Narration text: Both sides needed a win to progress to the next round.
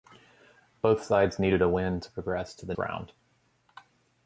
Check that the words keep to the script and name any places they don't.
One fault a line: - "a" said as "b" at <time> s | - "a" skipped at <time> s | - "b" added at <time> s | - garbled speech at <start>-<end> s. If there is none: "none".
- "next" skipped at 2.7 s